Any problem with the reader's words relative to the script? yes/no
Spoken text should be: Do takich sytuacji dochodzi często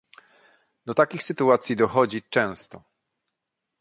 no